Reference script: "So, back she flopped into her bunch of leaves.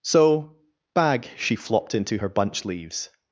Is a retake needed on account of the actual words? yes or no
yes